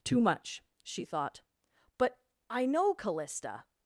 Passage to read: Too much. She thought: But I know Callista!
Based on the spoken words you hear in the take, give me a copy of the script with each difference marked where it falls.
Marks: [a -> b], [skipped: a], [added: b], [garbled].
Too much. She thought: But I know Callista!